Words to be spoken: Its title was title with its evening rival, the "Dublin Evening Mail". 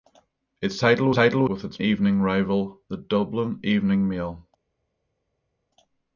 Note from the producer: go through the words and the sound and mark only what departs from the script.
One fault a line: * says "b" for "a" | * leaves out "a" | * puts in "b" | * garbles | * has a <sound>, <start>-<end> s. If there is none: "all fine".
all fine